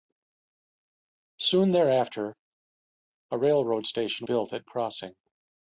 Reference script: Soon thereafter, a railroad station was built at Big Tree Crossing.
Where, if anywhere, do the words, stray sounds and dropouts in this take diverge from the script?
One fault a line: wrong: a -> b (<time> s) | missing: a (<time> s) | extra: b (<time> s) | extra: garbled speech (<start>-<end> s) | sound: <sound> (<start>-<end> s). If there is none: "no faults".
missing: was (4.3 s)
missing: Big Tree (4.7 s)